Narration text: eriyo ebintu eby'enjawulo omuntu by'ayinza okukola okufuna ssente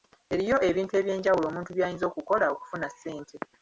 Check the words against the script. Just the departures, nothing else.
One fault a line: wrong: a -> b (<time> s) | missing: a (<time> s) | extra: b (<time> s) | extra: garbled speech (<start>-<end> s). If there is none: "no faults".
no faults